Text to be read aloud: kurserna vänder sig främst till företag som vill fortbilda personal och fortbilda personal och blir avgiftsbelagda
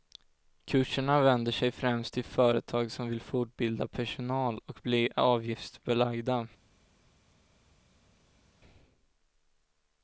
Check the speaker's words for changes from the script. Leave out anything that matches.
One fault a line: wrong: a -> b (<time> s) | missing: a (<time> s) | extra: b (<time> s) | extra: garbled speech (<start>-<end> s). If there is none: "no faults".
missing: fortbilda personal och (4.8 s)